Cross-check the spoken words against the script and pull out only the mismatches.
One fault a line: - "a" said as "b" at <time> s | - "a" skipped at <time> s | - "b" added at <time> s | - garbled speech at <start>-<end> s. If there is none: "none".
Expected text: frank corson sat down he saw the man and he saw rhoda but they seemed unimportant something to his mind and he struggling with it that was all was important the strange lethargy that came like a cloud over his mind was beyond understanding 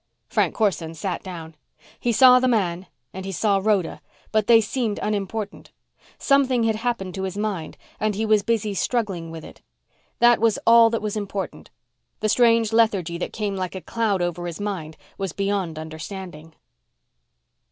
- "had happened" added at 6.6 s
- "was busy" added at 8.2 s
- "that" added at 10.9 s